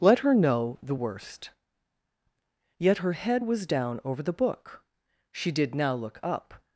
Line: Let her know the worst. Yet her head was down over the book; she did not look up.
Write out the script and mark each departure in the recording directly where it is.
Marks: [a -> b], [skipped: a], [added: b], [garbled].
Let her know the worst. Yet her head was down over the book; she did [not -> now] look up.